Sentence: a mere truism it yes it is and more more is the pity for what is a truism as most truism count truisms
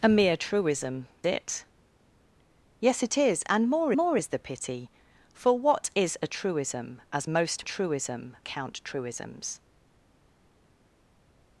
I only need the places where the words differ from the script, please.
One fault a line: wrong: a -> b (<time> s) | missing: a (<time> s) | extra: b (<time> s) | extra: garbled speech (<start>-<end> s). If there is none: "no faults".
no faults